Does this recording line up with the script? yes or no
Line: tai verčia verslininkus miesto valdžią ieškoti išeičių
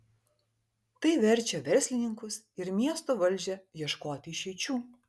no